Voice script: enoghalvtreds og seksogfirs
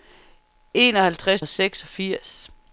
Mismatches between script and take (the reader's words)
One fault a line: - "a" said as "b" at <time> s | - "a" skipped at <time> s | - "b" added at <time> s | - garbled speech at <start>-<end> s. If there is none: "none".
none